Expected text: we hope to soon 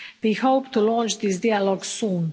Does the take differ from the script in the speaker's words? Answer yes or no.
yes